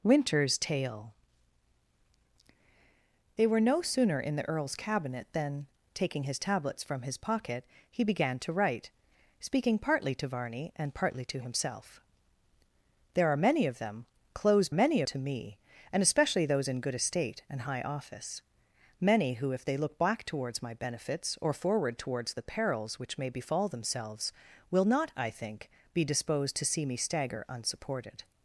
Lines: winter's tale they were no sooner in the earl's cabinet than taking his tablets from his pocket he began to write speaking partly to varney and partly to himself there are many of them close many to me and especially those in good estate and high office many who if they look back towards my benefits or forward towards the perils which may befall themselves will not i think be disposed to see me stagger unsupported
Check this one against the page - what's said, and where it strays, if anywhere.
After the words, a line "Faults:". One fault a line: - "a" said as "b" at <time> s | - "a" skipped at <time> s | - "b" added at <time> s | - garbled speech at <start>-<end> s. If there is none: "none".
winter's tale they were no sooner in the earl's cabinet than taking his tablets from his pocket he began to write speaking partly to varney and partly to himself there are many of them close many to me and especially those in good estate and high office many who if they look back towards my benefits or forward towards the perils which may befall themselves will not i think be disposed to see me stagger unsupported
Faults:
none